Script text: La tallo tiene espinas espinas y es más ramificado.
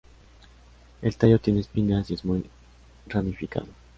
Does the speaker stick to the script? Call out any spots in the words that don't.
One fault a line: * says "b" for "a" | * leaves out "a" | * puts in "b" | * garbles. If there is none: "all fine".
* says "El" for "La"
* leaves out "espinas"
* says "muy" for "más"